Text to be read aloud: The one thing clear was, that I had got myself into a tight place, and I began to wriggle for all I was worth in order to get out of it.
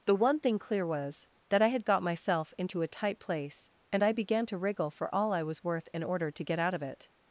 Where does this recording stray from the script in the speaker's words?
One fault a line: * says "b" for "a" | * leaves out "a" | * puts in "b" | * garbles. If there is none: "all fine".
all fine